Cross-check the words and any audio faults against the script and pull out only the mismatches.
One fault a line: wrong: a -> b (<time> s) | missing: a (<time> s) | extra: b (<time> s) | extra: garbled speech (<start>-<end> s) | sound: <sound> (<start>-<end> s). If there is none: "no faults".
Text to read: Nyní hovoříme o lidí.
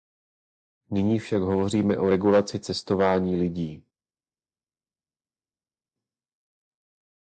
extra: však (1.2 s)
extra: regulaci cestování (2.1 s)